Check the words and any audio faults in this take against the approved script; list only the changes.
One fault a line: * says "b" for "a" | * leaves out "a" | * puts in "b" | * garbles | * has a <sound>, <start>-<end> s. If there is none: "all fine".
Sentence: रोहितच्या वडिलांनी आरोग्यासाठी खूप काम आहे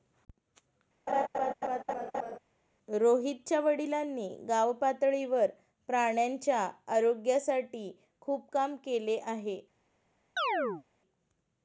* has a laugh, 1.1-2.4 s
* puts in "गावपातळीवर प्राण्यांच्या"
* puts in "केले"
* has a chirp, 10.4-10.8 s